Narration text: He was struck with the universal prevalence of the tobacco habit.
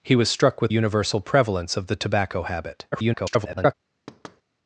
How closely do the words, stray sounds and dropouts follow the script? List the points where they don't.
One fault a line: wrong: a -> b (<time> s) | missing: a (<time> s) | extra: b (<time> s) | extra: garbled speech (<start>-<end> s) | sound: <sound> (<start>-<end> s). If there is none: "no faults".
missing: the (0.7 s)
extra: garbled speech (2.9-3.7 s)
sound: thud (4.1-4.4 s)